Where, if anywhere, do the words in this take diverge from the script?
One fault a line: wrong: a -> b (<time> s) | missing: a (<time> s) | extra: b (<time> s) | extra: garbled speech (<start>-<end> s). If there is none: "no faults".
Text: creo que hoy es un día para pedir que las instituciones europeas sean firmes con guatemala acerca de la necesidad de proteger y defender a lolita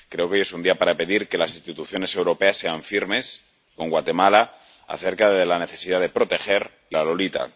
missing: defender (7.0 s)